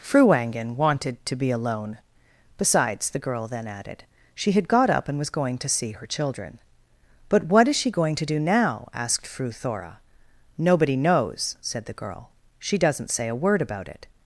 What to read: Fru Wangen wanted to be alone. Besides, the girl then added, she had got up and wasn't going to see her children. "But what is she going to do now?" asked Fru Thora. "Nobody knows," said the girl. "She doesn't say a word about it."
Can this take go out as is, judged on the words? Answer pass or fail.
fail